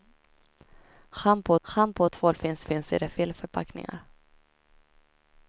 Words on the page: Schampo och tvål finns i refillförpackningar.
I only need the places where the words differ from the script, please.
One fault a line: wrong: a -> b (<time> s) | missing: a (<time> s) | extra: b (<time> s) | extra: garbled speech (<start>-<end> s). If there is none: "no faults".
extra: schampo (1.6 s)
extra: finns (2.6 s)